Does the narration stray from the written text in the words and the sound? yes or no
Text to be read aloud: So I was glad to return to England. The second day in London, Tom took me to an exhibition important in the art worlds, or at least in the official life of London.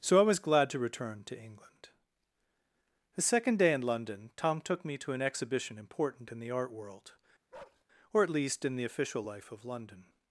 yes